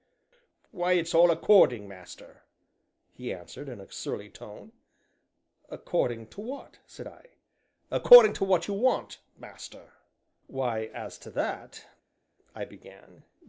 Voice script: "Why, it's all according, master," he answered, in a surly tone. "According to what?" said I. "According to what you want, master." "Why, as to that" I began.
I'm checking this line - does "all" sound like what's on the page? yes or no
yes